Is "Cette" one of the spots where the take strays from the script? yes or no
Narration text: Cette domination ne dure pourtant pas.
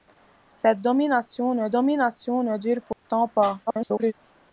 no